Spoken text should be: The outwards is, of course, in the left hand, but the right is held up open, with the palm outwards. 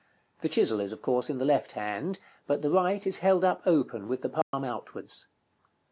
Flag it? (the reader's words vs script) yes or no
yes